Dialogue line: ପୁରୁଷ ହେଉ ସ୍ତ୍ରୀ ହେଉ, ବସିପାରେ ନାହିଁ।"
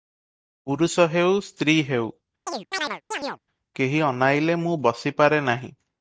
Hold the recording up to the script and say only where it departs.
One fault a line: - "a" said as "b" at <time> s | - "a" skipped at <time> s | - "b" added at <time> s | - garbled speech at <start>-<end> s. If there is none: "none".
- "କେହି ଅନାଇଲେ ମୁଁ" added at 3.7 s